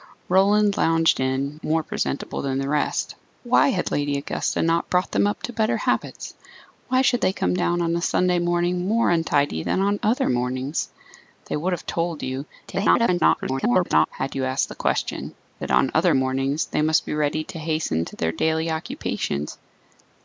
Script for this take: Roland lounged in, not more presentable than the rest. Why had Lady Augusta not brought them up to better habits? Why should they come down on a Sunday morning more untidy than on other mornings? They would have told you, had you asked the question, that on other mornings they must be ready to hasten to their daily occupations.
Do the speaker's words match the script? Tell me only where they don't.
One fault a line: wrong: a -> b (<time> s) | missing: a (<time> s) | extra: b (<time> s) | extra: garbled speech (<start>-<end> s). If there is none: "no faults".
missing: not (1.6 s)
extra: garbled speech (12.7-14.1 s)